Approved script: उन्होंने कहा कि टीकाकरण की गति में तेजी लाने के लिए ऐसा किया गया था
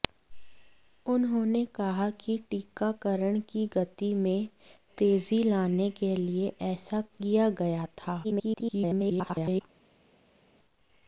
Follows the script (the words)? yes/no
no